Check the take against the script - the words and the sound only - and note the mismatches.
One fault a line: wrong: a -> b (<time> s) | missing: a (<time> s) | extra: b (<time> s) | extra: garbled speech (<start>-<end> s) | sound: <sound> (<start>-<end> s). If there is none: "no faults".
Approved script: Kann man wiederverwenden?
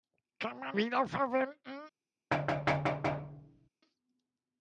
sound: thud (2.3-3.7 s)